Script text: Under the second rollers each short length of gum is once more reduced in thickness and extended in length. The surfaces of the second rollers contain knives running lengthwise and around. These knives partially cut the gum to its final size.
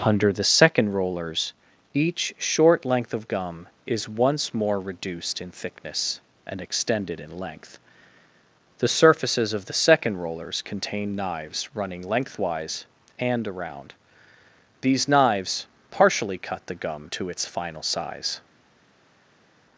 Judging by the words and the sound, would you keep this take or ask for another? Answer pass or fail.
pass